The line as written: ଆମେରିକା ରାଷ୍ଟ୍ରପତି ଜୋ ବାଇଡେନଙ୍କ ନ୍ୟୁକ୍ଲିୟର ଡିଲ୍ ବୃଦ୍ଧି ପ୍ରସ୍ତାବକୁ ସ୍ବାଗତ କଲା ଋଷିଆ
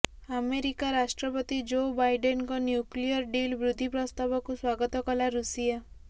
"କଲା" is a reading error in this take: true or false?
false